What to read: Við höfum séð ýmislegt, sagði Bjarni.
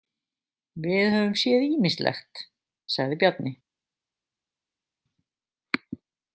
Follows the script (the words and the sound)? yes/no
yes